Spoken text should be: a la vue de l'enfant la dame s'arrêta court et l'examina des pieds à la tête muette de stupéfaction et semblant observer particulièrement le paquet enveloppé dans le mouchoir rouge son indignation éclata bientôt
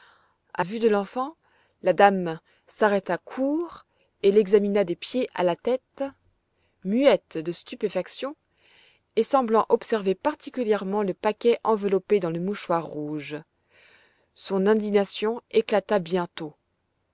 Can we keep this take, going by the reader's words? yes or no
no